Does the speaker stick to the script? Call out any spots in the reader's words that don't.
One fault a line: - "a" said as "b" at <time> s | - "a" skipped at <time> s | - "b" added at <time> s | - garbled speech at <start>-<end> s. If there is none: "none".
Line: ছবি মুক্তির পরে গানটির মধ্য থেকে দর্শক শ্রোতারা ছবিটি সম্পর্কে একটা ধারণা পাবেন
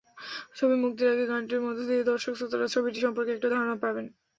- "পরে" said as "আগে" at 1.1 s
- "থেকে" said as "দিয়ে" at 1.9 s